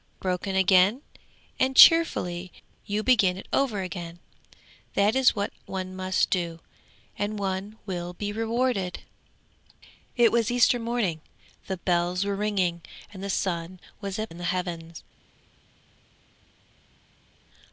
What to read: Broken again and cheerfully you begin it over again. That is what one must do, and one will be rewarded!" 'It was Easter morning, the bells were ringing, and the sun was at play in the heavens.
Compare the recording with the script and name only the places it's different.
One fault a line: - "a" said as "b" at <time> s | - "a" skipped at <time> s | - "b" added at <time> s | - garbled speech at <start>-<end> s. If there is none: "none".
- "play" skipped at 14.3 s